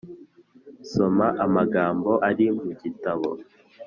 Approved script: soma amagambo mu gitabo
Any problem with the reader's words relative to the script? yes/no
yes